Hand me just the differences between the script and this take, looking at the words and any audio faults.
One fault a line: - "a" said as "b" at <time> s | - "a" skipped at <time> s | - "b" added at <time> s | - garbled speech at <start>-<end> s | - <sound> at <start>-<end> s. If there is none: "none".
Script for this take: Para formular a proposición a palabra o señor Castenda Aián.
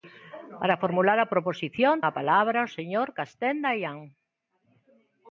none